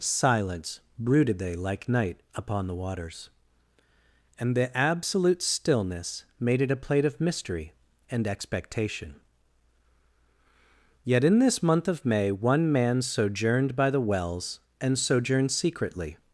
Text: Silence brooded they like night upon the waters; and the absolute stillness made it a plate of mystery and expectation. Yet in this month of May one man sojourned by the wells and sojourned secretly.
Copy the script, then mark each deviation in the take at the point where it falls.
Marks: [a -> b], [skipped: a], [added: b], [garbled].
Silence brooded they like night upon the waters; and the absolute stillness made it a plate of mystery and expectation. Yet in this month of May one man sojourned by the wells and sojourned secretly.